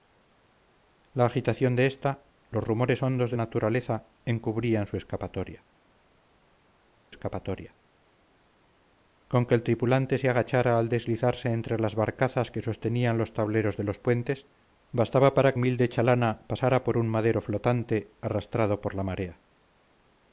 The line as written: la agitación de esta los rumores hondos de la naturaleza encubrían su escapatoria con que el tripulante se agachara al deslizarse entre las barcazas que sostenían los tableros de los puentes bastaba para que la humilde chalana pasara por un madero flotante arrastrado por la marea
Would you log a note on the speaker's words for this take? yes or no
yes